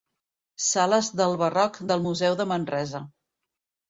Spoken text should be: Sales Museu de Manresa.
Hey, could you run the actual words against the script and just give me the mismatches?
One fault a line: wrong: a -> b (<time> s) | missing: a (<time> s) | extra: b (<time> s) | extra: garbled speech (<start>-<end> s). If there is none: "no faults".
extra: del Barroc del (1.2 s)